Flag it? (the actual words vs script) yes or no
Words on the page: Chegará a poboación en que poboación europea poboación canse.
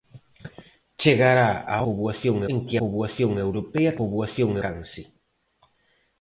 no